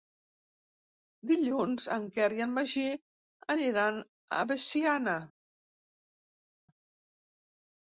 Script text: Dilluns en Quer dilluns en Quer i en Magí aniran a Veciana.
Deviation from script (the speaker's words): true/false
true